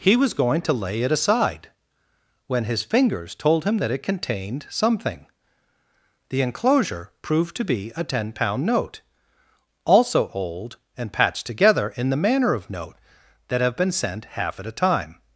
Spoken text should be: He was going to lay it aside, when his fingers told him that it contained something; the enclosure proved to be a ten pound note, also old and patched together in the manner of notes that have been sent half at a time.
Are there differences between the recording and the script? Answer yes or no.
yes